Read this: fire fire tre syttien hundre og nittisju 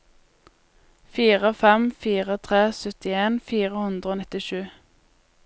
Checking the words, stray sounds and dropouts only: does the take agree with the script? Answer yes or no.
no